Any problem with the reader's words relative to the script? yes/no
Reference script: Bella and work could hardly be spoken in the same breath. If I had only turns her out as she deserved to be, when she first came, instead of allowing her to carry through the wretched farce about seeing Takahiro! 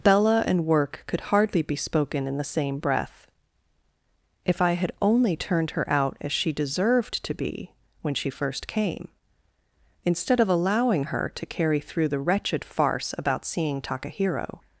yes